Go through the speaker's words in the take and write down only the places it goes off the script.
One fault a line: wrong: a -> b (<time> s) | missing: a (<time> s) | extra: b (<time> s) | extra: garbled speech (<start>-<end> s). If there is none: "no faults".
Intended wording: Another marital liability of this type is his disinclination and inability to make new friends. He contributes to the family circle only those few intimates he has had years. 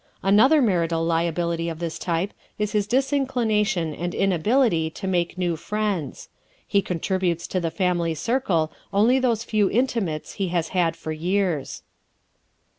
extra: for (10.9 s)